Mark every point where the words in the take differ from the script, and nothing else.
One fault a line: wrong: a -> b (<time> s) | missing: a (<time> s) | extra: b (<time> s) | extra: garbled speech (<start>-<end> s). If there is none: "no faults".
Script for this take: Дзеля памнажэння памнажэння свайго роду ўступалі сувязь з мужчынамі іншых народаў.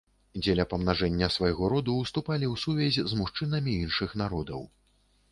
missing: памнажэння (1.3 s)
extra: ў (2.5 s)